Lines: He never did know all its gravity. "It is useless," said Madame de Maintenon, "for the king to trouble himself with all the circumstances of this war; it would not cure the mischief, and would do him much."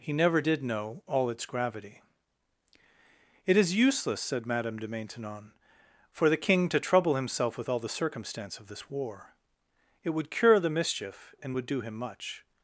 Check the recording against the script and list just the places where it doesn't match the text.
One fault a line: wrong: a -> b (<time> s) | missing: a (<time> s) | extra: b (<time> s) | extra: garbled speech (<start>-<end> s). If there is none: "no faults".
wrong: circumstances -> circumstance (7.9 s)
missing: not (10.3 s)